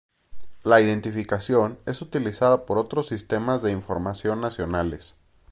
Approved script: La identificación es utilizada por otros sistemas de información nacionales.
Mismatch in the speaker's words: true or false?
false